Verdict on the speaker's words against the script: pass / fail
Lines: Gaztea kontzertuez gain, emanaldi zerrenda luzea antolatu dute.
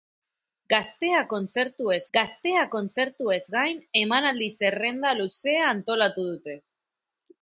fail